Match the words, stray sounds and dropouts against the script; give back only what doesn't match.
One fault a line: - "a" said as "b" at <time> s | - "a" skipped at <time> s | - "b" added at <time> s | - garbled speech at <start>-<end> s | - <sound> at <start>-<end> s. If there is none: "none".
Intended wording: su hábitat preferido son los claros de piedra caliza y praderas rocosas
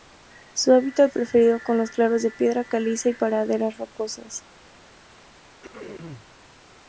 - throat clearing at 5.6-6.3 s